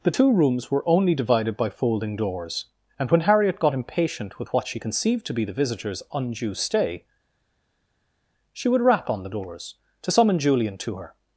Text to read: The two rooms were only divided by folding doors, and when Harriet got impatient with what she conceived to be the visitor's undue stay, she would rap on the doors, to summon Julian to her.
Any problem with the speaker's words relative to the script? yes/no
no